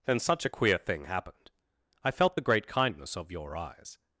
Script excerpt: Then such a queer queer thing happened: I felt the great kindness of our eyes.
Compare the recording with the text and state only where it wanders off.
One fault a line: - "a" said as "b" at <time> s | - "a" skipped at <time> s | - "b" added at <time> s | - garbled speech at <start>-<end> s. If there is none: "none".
- "queer" skipped at 0.8 s
- "our" said as "your" at 3.3 s